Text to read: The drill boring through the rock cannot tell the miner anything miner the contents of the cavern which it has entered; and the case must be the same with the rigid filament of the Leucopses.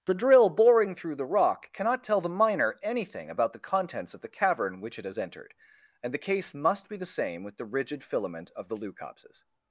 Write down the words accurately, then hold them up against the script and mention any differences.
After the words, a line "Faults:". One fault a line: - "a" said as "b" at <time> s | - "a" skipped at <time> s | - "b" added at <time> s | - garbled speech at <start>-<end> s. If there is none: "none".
The drill boring through the rock cannot tell the miner anything about the contents of the cavern which it has entered; and the case must be the same with the rigid filament of the Leucopses.
Faults:
- "miner" said as "about" at 3.3 s